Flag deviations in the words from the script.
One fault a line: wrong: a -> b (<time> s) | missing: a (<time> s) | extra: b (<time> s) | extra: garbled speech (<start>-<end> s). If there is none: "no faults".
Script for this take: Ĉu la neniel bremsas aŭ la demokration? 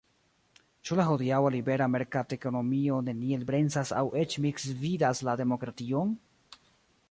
extra: hodiaŭa libera merkatekonomio (1.1 s)
extra: eĉ misgvidas (4.2 s)